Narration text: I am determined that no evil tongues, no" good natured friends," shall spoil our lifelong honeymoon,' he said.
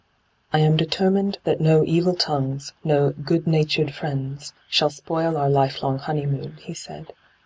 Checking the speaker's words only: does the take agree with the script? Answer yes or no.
yes